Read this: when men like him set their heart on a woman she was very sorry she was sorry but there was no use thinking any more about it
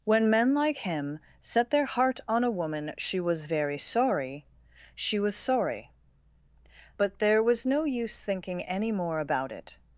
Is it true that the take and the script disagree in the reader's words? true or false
false